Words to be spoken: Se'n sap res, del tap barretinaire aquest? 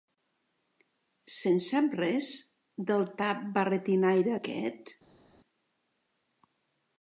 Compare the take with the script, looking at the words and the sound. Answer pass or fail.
pass